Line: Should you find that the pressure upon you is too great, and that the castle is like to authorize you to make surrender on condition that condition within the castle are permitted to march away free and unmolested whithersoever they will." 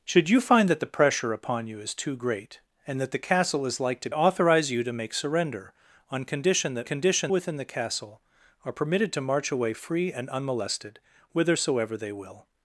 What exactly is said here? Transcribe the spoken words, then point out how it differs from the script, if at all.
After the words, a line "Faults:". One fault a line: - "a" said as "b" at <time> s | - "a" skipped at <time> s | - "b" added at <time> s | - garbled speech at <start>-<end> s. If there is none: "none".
Should you find that the pressure upon you is too great, and that the castle is like to authorize you to make surrender on condition that condition within the castle are permitted to march away free and unmolested whithersoever they will."
Faults:
none